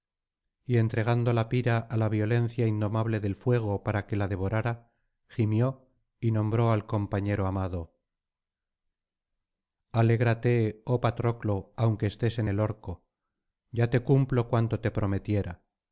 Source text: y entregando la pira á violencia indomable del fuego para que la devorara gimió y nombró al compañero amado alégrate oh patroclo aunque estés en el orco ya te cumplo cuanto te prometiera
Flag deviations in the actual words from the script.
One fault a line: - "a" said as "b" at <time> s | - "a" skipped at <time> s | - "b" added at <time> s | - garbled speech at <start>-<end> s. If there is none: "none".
- "la" added at 2.0 s